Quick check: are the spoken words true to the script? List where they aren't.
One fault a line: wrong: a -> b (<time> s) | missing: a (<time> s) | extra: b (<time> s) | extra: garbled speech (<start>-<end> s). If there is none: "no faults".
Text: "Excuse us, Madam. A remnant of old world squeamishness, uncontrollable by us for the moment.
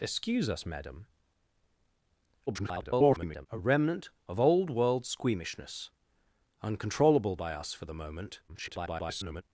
extra: garbled speech (2.5-3.5 s)
extra: garbled speech (8.5-9.4 s)